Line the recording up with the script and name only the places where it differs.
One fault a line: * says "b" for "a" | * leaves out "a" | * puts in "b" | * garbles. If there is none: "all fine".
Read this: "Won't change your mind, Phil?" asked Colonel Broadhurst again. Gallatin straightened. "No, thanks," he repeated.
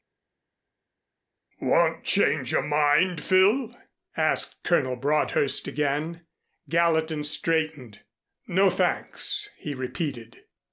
all fine